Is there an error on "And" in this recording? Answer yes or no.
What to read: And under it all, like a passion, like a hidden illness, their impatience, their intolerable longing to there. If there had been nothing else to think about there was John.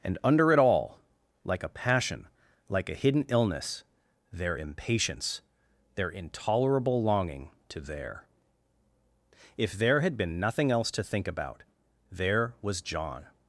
no